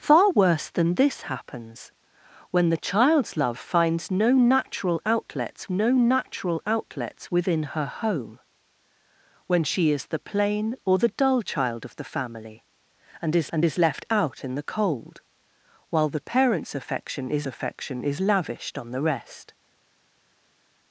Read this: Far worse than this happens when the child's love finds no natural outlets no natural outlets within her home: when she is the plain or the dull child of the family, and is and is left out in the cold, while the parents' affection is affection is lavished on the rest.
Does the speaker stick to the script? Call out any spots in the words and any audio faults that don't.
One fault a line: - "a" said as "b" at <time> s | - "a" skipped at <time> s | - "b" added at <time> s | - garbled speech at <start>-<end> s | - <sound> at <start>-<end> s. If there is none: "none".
none